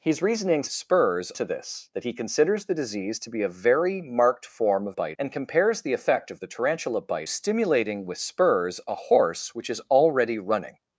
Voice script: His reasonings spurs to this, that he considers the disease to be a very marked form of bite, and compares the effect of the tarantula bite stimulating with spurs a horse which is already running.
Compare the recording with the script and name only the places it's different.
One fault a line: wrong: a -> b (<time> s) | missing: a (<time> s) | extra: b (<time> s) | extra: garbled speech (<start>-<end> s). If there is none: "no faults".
no faults